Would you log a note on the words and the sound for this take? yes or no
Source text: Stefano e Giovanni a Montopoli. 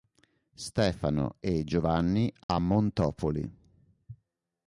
yes